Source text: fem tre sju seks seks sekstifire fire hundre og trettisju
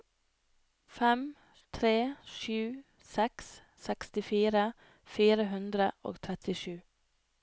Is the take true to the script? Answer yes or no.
no